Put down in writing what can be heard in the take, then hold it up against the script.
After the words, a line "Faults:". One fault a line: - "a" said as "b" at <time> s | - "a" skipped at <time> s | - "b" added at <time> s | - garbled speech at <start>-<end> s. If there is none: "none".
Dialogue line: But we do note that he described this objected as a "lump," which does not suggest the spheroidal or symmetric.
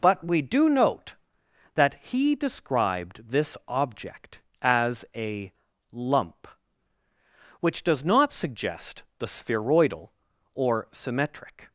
But we do note that he described this object as a "lump," which does not suggest the spheroidal or symmetric.
Faults:
- "objected" said as "object" at 3.7 s